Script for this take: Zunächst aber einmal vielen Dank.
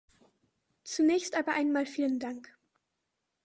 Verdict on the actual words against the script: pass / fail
pass